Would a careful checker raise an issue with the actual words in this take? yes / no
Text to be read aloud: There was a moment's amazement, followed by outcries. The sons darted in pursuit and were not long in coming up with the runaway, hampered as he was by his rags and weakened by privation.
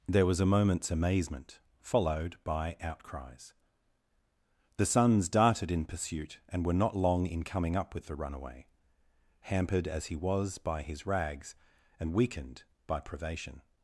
no